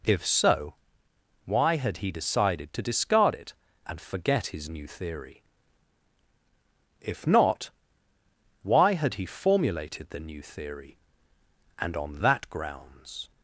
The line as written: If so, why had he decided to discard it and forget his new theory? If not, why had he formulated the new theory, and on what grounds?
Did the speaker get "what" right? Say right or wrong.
wrong